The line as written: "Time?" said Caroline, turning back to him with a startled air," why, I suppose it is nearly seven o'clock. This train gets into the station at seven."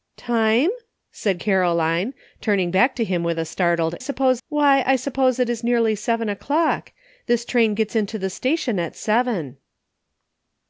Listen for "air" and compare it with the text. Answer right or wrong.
wrong